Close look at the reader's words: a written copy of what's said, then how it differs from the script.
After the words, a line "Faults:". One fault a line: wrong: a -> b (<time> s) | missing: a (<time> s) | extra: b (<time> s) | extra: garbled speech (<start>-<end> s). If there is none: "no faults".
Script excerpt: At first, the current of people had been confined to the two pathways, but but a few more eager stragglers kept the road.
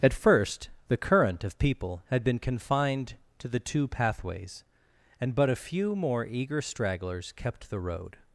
At first, the current of people had been confined to the two pathways, and but a few more eager stragglers kept the road.
Faults:
wrong: but -> and (5.2 s)